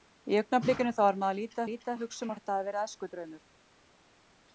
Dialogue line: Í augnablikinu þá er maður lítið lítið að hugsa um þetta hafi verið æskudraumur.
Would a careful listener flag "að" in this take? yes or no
no